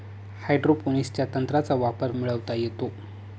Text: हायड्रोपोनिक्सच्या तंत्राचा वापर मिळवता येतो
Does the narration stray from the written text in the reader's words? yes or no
no